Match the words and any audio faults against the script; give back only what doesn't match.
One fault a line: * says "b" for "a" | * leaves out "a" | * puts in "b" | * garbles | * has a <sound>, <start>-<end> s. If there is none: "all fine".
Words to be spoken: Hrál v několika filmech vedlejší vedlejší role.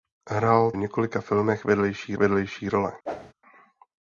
* has a whoosh, 3.1-3.3 s